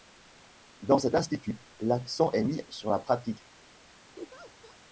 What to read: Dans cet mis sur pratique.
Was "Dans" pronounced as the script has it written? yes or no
yes